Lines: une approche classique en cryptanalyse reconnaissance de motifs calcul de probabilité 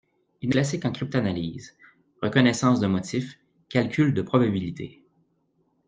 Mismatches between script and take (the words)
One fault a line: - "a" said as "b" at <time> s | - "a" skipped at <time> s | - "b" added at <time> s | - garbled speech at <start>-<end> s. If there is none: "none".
- "approche" skipped at 0.6 s